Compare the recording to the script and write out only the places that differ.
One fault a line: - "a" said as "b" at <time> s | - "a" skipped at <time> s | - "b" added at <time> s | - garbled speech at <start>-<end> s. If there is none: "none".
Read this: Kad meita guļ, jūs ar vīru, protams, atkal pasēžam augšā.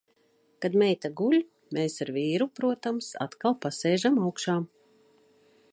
- "jūs" said as "mēs" at 1.8 s